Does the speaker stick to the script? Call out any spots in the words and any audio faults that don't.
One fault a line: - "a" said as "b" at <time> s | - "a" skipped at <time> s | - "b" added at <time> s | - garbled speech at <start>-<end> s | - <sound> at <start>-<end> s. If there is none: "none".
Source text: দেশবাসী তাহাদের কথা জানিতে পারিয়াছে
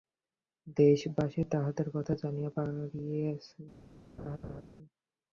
- laugh at 4.2-4.6 s